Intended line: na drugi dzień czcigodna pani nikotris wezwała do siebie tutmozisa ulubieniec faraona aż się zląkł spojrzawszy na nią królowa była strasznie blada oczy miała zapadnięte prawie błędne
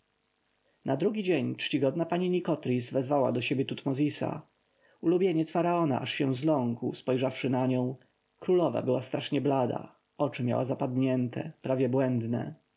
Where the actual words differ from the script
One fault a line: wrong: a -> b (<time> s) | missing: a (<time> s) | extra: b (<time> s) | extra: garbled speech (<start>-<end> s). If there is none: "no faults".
no faults